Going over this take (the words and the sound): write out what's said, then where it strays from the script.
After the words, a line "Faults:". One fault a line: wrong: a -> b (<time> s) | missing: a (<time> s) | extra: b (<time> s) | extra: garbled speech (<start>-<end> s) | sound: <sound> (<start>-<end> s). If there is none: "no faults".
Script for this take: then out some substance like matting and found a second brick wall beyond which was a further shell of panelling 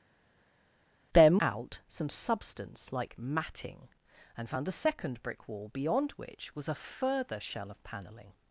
then out some substance like matting and found a second brick wall beyond which was a further shell of panelling
Faults:
no faults